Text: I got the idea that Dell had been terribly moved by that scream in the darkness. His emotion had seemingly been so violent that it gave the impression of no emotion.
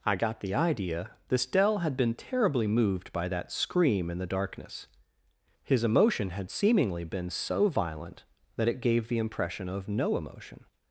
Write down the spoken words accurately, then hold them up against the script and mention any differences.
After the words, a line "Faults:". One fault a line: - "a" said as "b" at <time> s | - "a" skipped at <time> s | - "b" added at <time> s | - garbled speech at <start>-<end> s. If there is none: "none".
I got the idea this Dell had been terribly moved by that scream in the darkness. His emotion had seemingly been so violent that it gave the impression of no emotion.
Faults:
- "that" said as "this" at 1.3 s